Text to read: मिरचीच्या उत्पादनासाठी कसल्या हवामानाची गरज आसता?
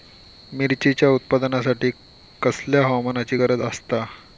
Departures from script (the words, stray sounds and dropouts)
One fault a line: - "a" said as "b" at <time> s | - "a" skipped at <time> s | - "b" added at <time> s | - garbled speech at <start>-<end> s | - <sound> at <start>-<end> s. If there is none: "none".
none